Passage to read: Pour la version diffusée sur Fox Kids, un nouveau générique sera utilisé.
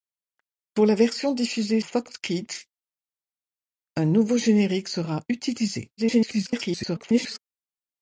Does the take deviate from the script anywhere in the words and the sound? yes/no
yes